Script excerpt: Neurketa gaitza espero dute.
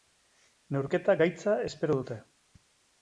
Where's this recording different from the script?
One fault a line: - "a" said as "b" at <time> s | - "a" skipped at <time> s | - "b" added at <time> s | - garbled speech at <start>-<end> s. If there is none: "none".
none